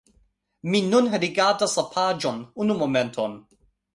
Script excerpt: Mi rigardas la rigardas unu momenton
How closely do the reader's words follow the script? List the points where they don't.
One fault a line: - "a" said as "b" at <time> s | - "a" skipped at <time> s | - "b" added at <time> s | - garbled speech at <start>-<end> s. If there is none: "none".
- "nun" added at 0.9 s
- "rigardas" said as "paĝon" at 2.0 s